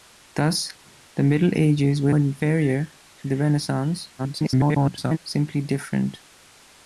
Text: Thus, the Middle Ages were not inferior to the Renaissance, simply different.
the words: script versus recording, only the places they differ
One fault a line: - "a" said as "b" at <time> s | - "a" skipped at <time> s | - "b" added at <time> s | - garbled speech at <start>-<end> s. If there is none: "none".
- "not" skipped at 2.1 s
- garbled speech at 4.2-5.2 s